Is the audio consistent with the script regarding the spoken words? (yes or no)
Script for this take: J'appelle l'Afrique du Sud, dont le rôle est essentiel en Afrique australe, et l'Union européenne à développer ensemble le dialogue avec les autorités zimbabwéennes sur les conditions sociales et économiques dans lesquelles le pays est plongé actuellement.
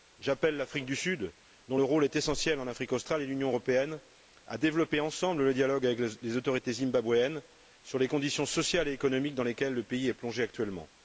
yes